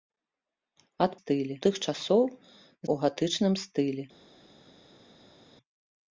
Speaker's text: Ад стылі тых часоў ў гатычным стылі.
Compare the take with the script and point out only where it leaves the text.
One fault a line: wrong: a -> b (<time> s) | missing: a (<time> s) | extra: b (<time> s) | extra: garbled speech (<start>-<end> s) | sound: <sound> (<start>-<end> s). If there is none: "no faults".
no faults